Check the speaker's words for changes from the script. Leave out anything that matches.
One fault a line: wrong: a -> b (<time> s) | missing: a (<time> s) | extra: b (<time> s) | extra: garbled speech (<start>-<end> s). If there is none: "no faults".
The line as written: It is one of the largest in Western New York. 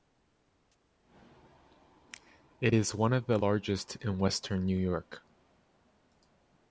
no faults